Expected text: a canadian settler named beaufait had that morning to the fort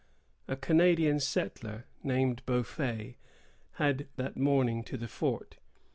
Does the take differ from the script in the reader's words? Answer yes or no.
no